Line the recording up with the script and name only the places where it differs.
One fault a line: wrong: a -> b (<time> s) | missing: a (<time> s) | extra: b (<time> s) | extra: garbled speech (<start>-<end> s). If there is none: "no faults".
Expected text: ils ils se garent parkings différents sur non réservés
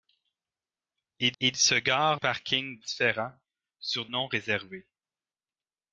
no faults